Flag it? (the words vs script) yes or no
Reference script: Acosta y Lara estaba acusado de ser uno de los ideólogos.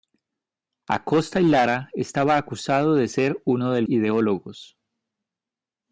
yes